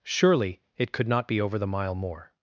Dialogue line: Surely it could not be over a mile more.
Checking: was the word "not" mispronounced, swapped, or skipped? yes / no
no